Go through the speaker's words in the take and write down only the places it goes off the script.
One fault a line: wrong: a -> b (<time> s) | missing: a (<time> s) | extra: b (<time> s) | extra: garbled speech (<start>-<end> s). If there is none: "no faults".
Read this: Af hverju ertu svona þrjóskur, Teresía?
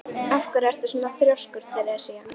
no faults